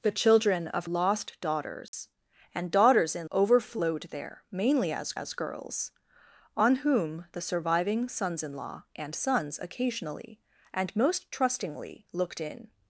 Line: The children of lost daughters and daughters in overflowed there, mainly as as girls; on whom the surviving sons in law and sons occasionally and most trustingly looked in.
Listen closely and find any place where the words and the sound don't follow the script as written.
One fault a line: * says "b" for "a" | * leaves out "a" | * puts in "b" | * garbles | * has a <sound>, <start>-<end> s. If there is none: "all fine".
* has a dropout, 1.9-1.9 s